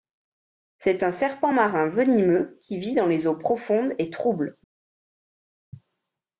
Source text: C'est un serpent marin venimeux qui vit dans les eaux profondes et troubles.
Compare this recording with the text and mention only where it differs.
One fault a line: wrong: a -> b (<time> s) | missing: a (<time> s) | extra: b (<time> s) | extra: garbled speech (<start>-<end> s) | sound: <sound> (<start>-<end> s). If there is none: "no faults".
no faults